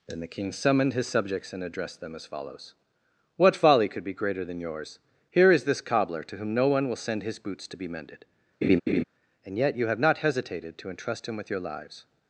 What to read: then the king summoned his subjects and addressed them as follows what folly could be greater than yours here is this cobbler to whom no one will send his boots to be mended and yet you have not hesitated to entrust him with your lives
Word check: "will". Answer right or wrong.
right